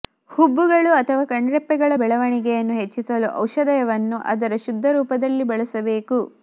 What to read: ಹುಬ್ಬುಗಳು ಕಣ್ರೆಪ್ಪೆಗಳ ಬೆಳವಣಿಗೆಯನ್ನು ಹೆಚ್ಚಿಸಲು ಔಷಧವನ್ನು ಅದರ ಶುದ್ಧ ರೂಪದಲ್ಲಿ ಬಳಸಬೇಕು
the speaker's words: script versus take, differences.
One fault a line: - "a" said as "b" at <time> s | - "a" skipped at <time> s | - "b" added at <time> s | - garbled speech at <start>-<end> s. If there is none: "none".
- "ಅಥವಾ" added at 0.9 s